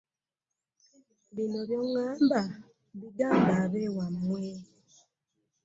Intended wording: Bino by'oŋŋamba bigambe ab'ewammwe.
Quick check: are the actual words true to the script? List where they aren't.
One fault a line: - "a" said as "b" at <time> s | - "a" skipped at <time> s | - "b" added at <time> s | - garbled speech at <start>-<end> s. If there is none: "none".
none